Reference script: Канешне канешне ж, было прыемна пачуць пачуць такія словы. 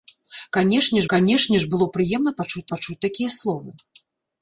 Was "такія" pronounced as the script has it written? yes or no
yes